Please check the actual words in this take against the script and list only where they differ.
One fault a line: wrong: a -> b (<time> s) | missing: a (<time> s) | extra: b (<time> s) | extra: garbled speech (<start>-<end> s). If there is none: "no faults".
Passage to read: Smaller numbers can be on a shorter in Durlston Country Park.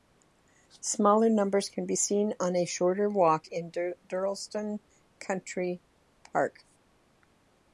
extra: seen (1.9 s)
extra: walk (3.1 s)